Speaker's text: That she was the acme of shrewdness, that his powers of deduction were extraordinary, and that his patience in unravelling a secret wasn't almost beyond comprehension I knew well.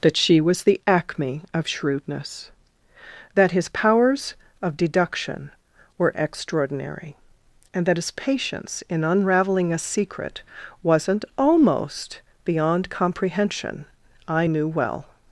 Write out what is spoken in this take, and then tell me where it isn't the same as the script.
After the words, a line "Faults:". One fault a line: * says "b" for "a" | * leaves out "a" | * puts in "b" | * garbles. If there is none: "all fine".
That she was the acme of shrewdness, that his powers of deduction were extraordinary, and that his patience in unravelling a secret wasn't almost beyond comprehension I knew well.
Faults:
all fine